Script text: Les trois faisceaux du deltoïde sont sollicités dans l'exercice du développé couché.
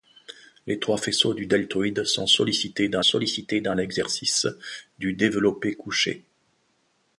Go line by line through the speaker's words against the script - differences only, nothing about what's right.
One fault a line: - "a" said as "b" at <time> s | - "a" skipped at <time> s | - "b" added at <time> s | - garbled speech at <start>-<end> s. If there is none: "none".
- "sollicités dans" added at 3.0 s